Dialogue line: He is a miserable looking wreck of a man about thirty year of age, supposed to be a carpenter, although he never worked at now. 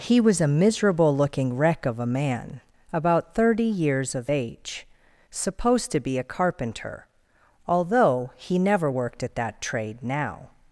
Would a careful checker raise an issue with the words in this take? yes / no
yes